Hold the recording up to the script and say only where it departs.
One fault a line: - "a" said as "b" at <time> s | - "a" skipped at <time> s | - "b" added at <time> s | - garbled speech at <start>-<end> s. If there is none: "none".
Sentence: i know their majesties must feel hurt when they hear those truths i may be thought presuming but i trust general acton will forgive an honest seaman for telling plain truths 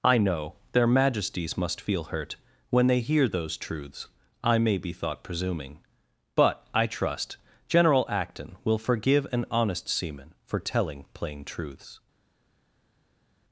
none